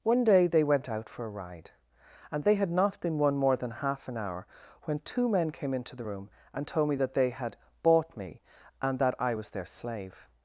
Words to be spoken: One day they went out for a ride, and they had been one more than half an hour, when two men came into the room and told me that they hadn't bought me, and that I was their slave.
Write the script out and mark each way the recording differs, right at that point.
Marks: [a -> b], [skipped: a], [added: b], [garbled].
One day they went out for a ride, and they had [added: not] been one more than half an hour, when two men came into the room and told me that they [hadn't -> had] bought me, and that I was their slave.